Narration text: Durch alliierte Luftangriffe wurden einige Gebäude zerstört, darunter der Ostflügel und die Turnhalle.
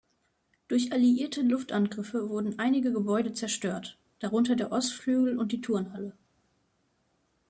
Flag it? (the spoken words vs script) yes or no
no